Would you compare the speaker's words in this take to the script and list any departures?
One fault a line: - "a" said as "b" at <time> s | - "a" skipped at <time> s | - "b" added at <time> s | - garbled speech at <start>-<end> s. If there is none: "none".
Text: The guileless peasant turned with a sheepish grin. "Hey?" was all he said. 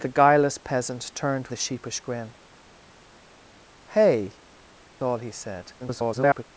- "with" skipped at 1.5 s
- "was" skipped at 4.4 s
- garbled speech at 5.8-6.4 s